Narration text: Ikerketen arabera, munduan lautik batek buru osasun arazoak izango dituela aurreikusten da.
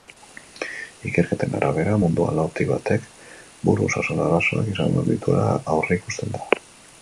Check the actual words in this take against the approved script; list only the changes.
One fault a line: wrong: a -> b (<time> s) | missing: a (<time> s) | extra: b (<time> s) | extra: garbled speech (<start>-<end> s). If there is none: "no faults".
no faults